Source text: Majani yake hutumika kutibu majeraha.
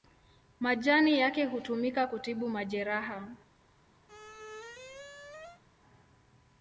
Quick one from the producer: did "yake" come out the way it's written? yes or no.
yes